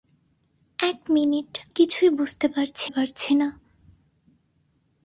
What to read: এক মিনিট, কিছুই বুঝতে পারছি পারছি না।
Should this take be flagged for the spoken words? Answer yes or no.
no